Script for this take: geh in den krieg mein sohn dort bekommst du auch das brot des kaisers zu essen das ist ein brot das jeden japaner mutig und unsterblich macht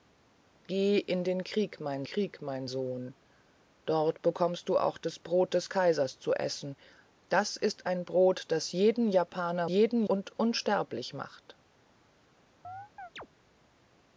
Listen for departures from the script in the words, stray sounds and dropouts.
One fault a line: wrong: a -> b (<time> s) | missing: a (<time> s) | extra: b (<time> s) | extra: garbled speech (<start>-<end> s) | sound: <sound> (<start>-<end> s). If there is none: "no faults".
extra: krieg mein (2.0 s)
wrong: mutig -> jeden (9.7 s)
sound: chirp (12.6-13.3 s)